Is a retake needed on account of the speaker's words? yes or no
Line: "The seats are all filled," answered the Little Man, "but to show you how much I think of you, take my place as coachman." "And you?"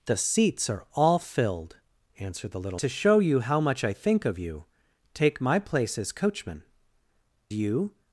yes